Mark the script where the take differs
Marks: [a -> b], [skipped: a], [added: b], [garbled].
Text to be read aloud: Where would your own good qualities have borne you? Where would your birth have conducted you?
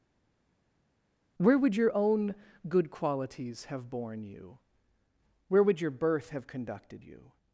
Where would your own good qualities have borne you? Where would your birth have conducted you?